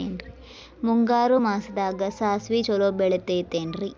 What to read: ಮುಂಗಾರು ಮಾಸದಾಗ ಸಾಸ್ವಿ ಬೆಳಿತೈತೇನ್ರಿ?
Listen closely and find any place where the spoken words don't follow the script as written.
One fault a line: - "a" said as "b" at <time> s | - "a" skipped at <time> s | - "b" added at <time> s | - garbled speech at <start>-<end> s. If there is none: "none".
- "ಛಲೋ" added at 2.6 s